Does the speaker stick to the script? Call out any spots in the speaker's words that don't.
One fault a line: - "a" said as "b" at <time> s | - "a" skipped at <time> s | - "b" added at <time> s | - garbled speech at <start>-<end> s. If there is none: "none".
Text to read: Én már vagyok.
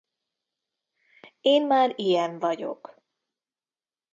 - "ilyen" added at 1.9 s